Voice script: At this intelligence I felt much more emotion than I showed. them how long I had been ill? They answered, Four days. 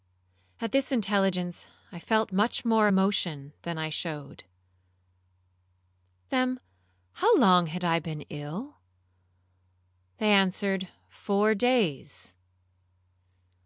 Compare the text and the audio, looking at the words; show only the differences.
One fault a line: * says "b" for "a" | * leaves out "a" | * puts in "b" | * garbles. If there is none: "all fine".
all fine